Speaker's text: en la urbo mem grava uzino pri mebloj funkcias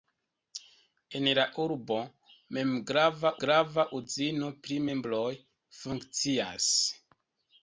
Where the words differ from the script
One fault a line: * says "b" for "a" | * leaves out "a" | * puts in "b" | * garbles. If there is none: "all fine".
* puts in "grava"